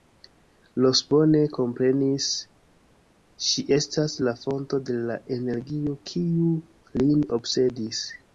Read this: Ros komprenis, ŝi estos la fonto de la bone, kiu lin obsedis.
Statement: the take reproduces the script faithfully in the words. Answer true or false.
false